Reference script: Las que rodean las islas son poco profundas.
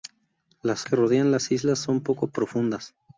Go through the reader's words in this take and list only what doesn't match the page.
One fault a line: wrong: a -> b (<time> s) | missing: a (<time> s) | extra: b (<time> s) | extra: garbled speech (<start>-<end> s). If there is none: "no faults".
no faults